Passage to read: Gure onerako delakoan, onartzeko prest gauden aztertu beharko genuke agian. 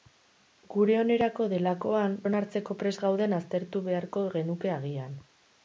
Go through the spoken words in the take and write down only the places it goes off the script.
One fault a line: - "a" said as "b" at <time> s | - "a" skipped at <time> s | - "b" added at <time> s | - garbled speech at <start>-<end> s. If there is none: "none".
none